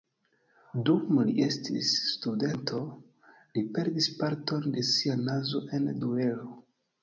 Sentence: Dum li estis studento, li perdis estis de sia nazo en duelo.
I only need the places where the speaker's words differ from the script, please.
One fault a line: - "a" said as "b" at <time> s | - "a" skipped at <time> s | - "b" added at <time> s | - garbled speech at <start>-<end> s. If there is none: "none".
- "estis" said as "parton" at 4.2 s